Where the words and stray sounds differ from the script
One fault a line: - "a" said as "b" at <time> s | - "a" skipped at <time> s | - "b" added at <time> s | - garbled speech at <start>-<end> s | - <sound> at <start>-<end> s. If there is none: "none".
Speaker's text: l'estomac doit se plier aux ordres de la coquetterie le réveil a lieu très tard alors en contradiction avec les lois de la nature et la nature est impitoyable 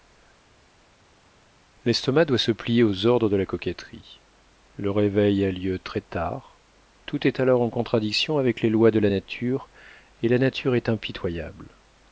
- "tout est" added at 7.0 s